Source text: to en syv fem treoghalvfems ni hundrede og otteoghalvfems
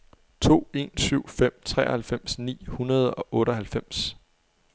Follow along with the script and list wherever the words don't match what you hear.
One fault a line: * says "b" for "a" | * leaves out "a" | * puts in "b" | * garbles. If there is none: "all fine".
all fine